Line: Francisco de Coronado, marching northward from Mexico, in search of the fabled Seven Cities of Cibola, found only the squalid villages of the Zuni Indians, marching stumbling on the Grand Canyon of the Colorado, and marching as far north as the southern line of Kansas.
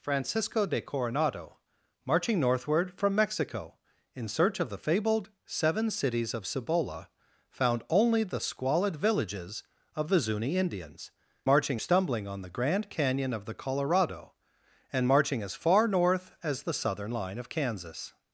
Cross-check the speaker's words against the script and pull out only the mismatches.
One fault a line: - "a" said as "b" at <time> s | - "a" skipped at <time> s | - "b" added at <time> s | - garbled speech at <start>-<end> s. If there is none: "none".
none